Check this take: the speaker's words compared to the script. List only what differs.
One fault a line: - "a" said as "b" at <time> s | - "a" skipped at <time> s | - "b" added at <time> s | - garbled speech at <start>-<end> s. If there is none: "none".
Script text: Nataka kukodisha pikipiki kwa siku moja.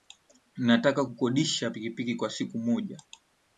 none